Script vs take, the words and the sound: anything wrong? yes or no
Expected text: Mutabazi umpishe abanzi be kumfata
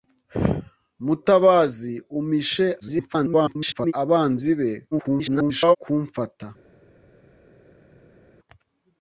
yes